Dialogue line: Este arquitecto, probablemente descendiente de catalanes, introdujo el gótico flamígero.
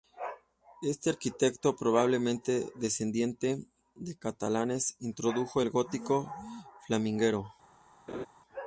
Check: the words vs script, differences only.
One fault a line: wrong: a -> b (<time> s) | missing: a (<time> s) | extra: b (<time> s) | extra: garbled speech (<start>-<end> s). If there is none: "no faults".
no faults